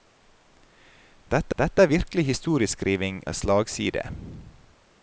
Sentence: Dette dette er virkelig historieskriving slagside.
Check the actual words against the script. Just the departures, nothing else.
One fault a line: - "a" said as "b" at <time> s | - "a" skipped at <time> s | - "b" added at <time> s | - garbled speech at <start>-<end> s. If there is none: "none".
none